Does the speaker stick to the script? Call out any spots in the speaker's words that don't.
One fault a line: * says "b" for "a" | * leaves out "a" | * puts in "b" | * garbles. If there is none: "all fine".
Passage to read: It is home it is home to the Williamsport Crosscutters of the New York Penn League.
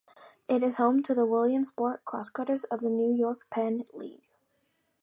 * leaves out "it is home"